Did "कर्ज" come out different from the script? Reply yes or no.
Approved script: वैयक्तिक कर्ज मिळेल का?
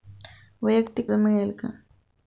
yes